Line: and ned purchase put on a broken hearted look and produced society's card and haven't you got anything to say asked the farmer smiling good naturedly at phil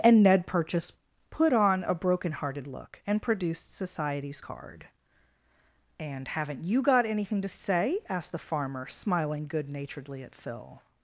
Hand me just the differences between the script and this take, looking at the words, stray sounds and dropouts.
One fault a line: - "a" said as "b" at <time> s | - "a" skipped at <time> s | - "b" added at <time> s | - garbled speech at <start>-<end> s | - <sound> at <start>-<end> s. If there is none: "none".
none